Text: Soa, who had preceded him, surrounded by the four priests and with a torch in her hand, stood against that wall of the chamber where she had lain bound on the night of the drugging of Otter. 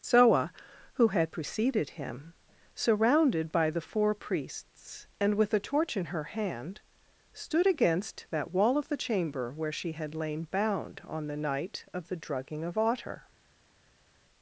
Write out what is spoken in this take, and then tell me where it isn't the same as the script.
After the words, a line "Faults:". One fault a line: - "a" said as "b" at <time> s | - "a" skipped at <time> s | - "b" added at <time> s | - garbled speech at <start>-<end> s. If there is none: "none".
Soa, who had preceded him, surrounded by the four priests and with a torch in her hand, stood against that wall of the chamber where she had lain bound on the night of the drugging of Otter.
Faults:
none